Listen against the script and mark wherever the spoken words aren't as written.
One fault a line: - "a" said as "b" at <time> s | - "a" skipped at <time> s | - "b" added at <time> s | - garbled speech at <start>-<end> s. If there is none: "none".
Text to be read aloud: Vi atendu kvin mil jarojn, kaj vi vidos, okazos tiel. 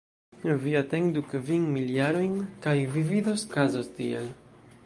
none